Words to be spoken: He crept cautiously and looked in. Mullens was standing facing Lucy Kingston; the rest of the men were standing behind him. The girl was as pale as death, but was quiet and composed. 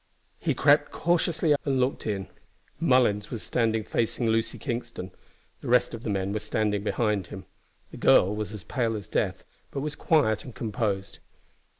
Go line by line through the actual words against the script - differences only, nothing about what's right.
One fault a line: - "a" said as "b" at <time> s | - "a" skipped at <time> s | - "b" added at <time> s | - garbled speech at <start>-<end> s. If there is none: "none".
none